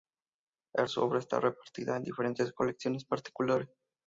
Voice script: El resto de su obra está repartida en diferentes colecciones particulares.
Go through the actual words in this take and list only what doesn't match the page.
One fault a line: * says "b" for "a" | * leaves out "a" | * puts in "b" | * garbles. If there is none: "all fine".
* leaves out "resto"